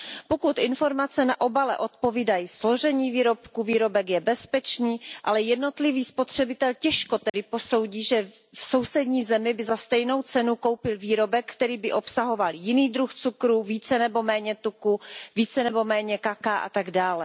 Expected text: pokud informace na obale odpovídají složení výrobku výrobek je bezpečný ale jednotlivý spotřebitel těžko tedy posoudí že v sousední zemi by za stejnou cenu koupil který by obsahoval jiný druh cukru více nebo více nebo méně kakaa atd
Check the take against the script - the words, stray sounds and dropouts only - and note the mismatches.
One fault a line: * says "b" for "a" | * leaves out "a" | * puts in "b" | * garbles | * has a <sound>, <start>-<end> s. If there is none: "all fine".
* has a dropout, 7.3-7.3 s
* puts in "výrobek"
* puts in "méně tuku"